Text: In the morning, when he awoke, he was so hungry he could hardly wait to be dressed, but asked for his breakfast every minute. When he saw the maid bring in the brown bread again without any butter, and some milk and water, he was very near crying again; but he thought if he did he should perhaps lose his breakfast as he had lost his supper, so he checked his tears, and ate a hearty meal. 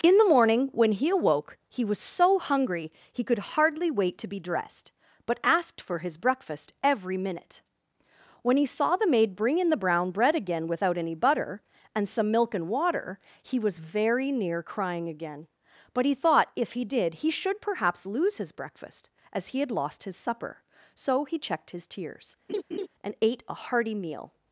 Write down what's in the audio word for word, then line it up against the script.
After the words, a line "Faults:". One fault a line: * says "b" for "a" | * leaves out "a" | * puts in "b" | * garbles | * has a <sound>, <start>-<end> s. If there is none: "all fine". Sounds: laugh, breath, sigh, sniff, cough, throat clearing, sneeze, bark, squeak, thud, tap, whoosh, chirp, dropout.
In the morning, when he awoke, he was so hungry he could hardly wait to be dressed, but asked for his breakfast every minute. When he saw the maid bring in the brown bread again without any butter, and some milk and water, he was very near crying again; but he thought if he did he should perhaps lose his breakfast as he had lost his supper, so he checked his tears, and ate a hearty meal.
Faults:
* has a laugh, 22.5-22.9 s